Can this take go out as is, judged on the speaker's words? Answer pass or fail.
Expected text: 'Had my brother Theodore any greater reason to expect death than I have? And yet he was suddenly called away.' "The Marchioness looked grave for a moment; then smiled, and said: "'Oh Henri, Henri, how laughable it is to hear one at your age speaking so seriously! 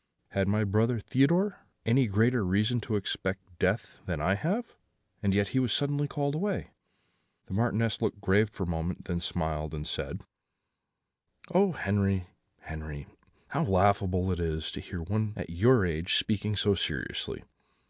pass